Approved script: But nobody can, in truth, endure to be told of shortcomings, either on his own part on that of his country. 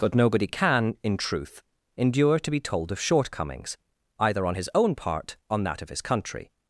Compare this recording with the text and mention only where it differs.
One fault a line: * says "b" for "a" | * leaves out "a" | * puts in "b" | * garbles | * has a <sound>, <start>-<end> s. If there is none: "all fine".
all fine